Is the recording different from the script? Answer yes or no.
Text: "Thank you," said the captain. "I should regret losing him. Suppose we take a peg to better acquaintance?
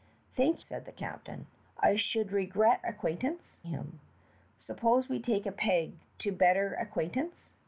yes